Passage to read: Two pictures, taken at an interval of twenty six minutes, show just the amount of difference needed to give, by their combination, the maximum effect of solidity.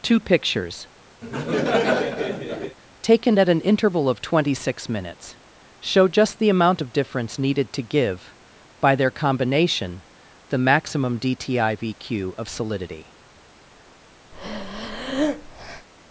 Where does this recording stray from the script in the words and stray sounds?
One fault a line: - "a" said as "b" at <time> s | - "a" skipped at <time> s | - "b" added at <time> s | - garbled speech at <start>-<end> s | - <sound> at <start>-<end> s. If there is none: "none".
- laugh at 1.2-2.8 s
- "effect" said as "dtivq" at 11.2 s
- breath at 14.3-15.9 s